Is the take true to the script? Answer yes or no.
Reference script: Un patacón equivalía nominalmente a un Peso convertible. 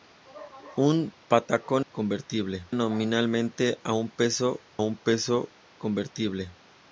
no